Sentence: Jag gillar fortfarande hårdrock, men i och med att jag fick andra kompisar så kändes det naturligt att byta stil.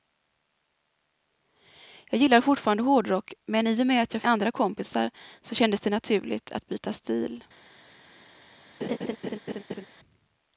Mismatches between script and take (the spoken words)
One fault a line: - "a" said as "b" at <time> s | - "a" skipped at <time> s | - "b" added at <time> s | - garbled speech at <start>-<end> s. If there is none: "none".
- "fick" skipped at 4.2 s